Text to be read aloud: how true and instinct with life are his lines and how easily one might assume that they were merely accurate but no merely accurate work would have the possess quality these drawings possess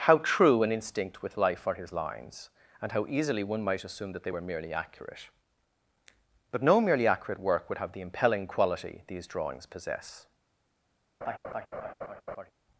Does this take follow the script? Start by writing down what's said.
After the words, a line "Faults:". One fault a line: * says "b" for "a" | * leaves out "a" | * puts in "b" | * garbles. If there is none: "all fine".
how true and instinct with life are his lines and how easily one might assume that they were merely accurate but no merely accurate work would have the impelling quality these drawings possess
Faults:
* says "impelling" for "possess"